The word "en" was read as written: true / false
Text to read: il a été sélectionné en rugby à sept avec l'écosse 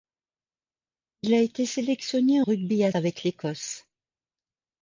false